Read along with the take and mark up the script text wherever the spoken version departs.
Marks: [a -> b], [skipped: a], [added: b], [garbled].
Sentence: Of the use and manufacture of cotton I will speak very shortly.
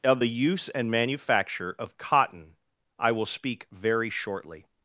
Of the use and manufacture of cotton I will speak very shortly.